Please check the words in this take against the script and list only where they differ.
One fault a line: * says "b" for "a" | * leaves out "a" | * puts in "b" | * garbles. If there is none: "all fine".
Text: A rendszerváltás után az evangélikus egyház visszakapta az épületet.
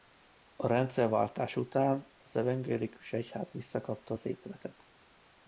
all fine